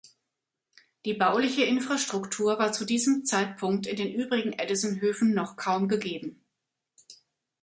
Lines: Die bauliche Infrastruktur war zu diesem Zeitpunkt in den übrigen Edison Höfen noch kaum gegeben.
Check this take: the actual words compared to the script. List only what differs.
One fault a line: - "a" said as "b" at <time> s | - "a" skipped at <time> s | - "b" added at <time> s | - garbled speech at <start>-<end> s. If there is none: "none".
none